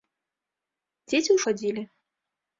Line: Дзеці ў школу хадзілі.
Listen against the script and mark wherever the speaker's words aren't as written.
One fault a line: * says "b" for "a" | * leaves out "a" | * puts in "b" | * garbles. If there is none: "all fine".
* leaves out "школу"